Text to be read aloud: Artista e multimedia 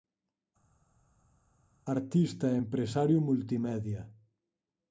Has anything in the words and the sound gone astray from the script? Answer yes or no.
yes